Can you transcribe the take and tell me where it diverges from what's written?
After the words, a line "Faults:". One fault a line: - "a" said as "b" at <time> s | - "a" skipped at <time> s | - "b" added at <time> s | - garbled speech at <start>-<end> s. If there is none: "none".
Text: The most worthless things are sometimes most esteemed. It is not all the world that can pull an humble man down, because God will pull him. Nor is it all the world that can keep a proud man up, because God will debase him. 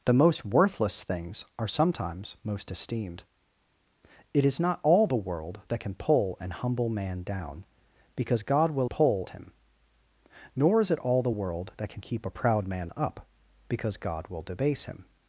The most worthless things are sometimes most esteemed. It is not all the world that can pull an humble man down, because God will pull him. Nor is it all the world that can keep a proud man up, because God will debase him.
Faults:
none